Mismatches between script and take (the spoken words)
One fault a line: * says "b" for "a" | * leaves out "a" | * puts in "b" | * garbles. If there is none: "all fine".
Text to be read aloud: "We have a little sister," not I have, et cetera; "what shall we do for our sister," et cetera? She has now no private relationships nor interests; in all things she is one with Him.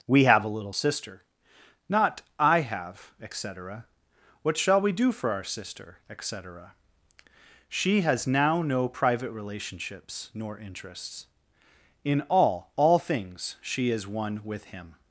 * puts in "all"